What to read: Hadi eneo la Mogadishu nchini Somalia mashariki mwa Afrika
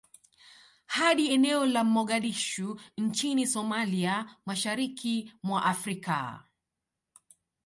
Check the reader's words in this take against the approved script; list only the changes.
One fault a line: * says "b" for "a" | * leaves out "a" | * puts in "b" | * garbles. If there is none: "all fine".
all fine